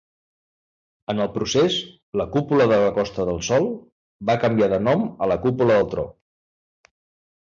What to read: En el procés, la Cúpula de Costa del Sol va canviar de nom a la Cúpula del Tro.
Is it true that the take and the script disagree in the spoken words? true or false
true